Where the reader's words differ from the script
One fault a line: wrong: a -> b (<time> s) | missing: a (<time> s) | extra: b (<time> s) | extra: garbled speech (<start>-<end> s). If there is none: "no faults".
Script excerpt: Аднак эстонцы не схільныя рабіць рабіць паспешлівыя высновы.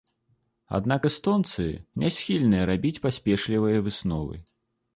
missing: рабіць (3.0 s)